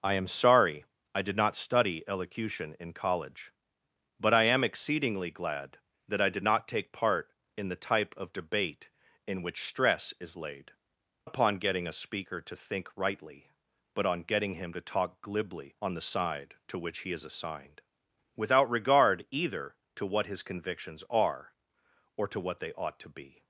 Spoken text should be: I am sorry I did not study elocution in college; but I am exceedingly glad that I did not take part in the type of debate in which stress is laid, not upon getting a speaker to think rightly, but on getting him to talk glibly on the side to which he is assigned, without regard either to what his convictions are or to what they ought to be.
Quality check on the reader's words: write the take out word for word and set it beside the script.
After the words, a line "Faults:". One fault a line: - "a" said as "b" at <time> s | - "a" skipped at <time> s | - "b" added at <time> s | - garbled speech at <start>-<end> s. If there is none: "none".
I am sorry I did not study elocution in college; but I am exceedingly glad that I did not take part in the type of debate in which stress is laid, upon getting a speaker to think rightly, but on getting him to talk glibly on the side to which he is assigned, without regard either to what his convictions are or to what they ought to be.
Faults:
- "not" skipped at 10.7 s